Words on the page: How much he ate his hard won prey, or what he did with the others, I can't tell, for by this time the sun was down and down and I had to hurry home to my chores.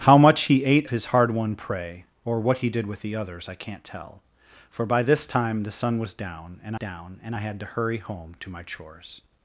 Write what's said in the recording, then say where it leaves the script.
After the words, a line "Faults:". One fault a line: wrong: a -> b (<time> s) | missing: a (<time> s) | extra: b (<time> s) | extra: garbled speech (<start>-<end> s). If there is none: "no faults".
How much he ate his hard won prey, or what he did with the others, I can't tell, for by this time the sun was down and down and I had to hurry home to my chores.
Faults:
no faults